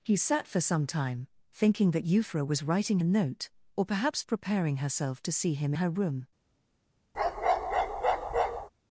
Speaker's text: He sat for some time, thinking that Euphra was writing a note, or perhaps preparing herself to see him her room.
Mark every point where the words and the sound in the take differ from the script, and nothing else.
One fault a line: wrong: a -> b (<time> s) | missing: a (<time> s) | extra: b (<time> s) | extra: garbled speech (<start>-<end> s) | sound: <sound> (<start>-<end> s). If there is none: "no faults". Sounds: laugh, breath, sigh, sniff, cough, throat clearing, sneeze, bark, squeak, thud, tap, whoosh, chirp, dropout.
sound: bark (7.1-8.7 s)